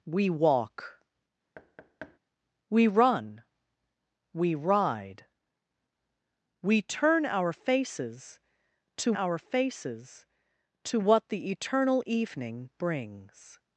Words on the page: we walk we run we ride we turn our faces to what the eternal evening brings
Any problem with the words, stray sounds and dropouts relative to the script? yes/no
yes